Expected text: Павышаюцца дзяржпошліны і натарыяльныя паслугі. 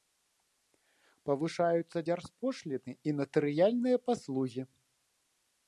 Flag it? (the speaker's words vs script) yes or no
no